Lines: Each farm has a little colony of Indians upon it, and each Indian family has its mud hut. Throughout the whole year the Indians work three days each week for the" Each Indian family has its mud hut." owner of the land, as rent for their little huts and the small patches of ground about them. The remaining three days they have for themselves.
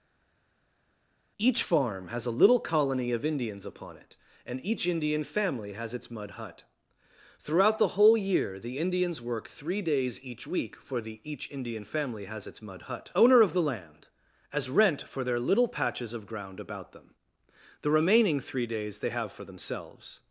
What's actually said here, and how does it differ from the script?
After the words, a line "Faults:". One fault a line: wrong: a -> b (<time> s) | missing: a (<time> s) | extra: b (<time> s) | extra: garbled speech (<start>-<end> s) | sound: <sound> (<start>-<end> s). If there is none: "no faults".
Each farm has a little colony of Indians upon it, and each Indian family has its mud hut. Throughout the whole year the Indians work three days each week for the" Each Indian family has its mud hut." owner of the land, as rent for their little patches of ground about them. The remaining three days they have for themselves.
Faults:
missing: huts and the small (15.7 s)